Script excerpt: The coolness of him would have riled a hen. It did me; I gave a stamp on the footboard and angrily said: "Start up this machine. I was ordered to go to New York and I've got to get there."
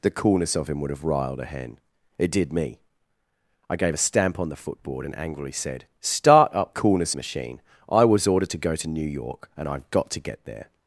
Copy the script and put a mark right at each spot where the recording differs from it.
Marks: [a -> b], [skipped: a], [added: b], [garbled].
The coolness of him would have riled a hen. It did me; I gave a stamp on the footboard and angrily said: "Start up [this -> coolness] machine. I was ordered to go to New York and I've got to get there."